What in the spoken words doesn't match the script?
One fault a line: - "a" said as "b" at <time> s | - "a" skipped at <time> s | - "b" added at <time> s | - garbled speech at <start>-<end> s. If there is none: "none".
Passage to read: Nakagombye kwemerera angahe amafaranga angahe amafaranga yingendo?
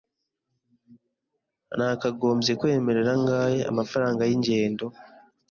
- "angahe amafaranga" skipped at 4.2 s